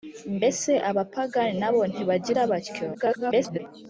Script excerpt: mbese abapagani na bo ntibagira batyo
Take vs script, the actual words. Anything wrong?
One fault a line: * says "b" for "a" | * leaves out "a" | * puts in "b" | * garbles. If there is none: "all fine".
* garbles